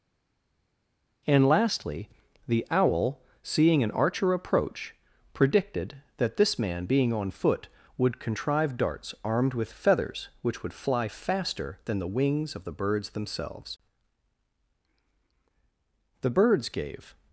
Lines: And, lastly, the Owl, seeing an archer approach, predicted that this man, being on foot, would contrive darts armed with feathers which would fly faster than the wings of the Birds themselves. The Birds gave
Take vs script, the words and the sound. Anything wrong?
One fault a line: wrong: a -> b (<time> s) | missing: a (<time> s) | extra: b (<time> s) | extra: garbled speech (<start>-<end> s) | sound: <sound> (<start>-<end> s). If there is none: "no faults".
no faults